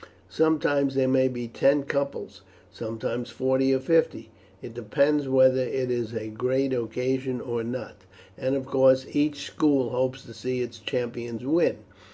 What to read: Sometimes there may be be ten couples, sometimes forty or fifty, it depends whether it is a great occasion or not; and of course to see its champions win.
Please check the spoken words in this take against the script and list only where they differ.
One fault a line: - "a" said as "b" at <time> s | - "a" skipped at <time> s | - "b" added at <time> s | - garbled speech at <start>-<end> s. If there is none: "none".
- "be" skipped at 1.5 s
- "each school hopes" added at 9.1 s